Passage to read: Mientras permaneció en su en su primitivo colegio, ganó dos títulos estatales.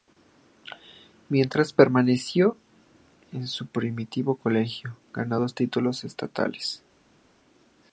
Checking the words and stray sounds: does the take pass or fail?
fail